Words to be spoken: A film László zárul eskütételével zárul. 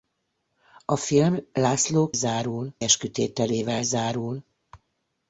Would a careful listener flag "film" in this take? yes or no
no